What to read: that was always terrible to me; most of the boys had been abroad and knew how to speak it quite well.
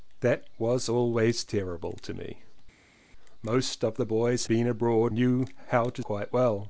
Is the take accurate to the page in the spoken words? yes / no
no